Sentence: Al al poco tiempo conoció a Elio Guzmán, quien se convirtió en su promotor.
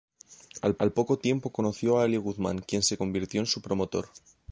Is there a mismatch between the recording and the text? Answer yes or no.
no